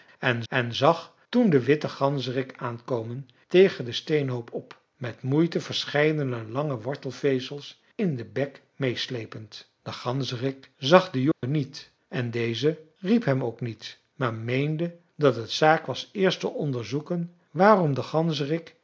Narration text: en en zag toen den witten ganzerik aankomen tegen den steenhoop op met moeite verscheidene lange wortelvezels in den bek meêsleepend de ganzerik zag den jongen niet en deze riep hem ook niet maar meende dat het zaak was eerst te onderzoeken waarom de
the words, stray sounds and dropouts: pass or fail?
fail